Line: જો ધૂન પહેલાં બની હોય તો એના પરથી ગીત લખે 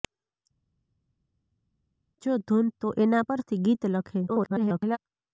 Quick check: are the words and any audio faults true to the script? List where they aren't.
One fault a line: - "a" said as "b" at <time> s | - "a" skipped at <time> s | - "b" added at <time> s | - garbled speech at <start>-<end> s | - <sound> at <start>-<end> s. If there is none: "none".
- "પહેલાં બની હોય" skipped at 2.7 s
- garbled speech at 4.3-5.0 s